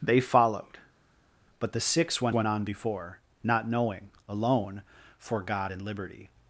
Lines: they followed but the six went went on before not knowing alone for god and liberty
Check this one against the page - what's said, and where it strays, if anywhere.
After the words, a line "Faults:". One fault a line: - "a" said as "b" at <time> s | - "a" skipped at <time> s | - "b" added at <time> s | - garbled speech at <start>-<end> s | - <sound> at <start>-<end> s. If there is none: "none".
they followed but the six went went on before not knowing alone for god and liberty
Faults:
none